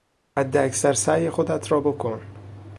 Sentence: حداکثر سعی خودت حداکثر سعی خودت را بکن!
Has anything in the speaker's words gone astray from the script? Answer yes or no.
yes